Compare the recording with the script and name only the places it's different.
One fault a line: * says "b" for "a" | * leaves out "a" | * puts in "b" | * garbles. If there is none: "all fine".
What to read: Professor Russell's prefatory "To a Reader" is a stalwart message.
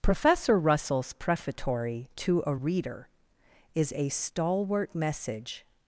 all fine